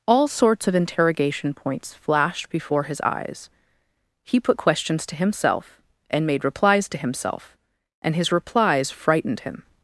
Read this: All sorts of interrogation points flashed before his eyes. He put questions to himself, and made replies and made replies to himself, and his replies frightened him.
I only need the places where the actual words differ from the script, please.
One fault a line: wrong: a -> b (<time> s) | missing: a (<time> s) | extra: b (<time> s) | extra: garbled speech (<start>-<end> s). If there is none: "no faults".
missing: and made replies (6.9 s)